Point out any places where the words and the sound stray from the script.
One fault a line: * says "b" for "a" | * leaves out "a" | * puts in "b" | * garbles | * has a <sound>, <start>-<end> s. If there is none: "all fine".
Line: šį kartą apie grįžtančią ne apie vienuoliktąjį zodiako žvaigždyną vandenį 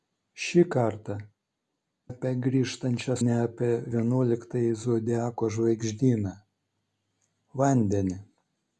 all fine